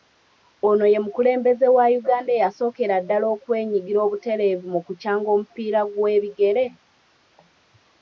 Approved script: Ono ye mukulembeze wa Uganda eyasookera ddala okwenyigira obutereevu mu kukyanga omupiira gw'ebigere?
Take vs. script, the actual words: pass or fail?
pass